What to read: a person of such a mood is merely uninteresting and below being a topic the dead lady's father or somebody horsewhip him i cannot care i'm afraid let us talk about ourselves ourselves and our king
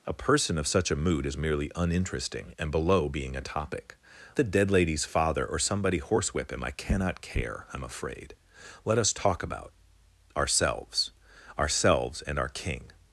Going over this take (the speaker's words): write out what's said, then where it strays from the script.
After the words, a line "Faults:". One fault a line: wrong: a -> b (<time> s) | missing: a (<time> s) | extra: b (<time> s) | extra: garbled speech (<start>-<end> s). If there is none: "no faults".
a person of such a mood is merely uninteresting and below being a topic the dead lady's father or somebody horsewhip him i cannot care i'm afraid let us talk about ourselves ourselves and our king
Faults:
no faults